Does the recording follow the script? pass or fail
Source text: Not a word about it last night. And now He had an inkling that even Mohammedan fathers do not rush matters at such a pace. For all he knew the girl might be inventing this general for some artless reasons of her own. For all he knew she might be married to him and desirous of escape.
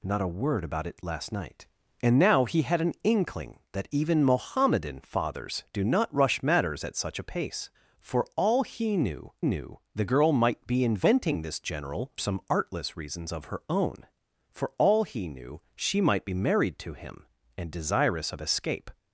fail